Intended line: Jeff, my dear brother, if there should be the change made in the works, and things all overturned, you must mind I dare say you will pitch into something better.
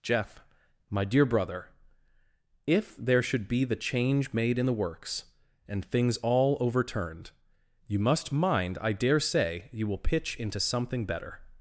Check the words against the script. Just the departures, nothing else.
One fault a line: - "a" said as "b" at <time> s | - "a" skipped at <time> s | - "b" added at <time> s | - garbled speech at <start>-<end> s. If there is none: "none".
none